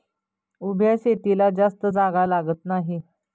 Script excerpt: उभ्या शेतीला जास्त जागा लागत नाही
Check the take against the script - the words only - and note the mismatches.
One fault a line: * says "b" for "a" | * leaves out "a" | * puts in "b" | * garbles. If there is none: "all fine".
all fine